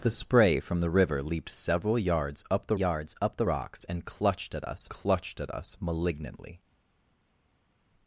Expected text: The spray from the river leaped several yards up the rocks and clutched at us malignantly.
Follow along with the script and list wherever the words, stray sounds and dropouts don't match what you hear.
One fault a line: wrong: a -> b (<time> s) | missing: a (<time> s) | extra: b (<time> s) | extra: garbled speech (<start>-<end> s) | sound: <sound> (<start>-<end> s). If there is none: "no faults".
extra: yards up the (2.7 s)
extra: clutched at us (4.9 s)